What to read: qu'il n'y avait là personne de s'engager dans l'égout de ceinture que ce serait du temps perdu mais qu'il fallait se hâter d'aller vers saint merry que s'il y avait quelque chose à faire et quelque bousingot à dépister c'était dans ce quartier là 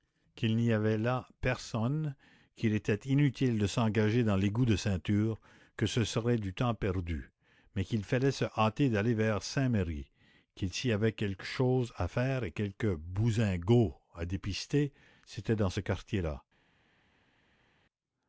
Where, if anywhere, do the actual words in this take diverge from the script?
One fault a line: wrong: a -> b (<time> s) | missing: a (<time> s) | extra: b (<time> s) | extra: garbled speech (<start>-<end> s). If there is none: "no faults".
extra: qu'il était inutile (2.5 s)